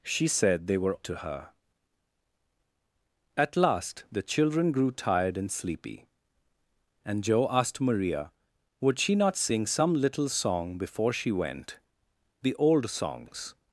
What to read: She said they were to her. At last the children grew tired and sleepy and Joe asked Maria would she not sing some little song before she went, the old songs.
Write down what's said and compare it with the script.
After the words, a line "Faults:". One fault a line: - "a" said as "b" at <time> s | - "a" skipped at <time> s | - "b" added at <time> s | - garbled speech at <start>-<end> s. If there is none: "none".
She said they were to her. At last the children grew tired and sleepy and Joe asked Maria would she not sing some little song before she went, the old songs.
Faults:
none